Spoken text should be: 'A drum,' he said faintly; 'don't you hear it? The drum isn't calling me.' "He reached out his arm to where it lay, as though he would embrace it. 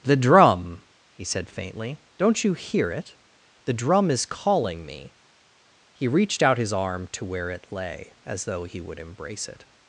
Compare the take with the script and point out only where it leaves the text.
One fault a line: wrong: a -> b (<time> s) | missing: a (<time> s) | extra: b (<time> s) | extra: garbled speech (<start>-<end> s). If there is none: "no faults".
wrong: A -> The (0.0 s)
wrong: isn't -> is (4.1 s)